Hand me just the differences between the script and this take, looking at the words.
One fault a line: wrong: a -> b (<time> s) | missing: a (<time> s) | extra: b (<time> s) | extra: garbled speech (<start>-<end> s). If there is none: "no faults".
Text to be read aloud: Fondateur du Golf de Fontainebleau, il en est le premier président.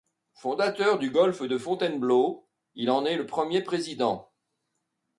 no faults